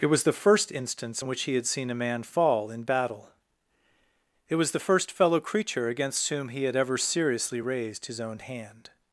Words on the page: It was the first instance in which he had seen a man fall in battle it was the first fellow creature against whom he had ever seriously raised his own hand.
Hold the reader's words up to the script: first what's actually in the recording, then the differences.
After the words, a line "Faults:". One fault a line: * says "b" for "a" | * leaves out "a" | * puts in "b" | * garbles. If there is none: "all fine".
It was the first instance in which he had seen a man fall in battle it was the first fellow creature against whom he had ever seriously raised his own hand.
Faults:
all fine